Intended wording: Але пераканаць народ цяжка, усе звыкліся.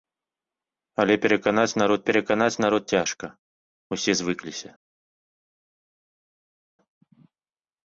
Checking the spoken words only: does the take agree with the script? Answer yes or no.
no